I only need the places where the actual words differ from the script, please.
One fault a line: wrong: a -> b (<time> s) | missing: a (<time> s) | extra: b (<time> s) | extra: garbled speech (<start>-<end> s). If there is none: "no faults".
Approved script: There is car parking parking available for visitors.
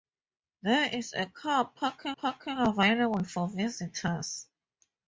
no faults